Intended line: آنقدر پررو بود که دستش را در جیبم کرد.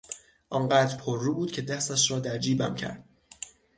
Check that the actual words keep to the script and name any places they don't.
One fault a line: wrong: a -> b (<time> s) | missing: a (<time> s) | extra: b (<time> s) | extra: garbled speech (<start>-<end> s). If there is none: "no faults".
no faults